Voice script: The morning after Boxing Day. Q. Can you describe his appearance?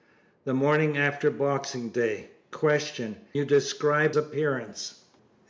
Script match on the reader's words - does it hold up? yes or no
no